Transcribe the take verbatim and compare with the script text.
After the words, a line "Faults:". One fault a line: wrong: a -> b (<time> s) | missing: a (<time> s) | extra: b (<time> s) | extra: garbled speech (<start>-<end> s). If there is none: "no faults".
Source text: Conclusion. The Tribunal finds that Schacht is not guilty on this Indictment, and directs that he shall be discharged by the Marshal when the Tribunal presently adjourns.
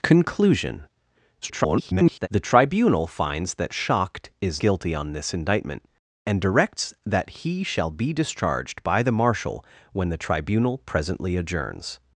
Conclusion. [garbled] The Tribunal finds that Schacht is guilty on this Indictment, and directs that he shall be discharged by the Marshal when the Tribunal presently adjourns.
Faults:
extra: garbled speech (1.4-2.3 s)
missing: not (4.6 s)